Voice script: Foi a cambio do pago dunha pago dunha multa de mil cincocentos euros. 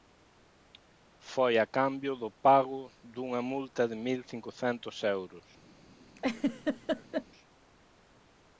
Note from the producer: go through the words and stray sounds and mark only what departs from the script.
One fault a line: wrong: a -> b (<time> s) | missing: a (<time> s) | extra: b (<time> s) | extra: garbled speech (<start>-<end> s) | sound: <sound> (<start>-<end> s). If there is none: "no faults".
missing: pago dunha (3.4 s)
sound: laugh (6.2-7.3 s)